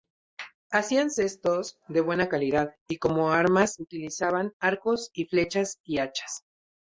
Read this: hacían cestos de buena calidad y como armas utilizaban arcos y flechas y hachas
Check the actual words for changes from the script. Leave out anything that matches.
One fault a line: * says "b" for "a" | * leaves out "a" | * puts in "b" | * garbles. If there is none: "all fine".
all fine